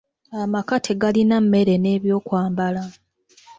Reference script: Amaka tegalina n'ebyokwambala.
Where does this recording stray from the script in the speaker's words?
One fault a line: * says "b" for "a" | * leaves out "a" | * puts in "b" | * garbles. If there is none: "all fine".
* puts in "mmere"